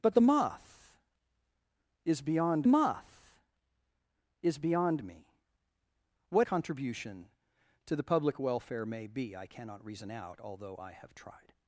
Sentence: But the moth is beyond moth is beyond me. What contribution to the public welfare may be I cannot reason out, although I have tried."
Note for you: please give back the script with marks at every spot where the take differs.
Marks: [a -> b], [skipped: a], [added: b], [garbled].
But the moth is beyond moth is beyond me. What contribution to the public welfare may be I cannot reason out, although I have tried."